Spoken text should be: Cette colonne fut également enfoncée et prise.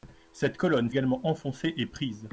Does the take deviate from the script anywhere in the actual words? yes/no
yes